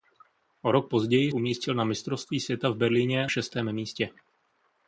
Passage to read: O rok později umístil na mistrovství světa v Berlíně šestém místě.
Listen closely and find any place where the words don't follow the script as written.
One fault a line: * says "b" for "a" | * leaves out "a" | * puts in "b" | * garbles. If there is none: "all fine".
all fine